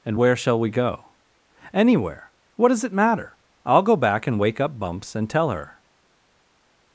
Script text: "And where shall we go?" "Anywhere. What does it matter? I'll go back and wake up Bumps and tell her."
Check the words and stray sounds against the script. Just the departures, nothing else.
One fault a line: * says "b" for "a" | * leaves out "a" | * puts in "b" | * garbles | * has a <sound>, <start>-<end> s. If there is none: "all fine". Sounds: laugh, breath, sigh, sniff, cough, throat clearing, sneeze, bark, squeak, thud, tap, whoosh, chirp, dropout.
all fine